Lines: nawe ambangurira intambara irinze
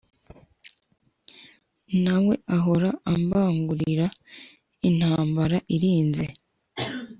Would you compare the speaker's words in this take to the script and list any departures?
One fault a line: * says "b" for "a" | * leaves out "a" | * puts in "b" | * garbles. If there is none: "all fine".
* puts in "ahora"